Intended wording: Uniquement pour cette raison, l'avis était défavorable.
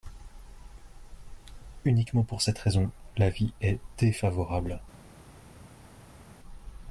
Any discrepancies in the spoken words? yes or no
yes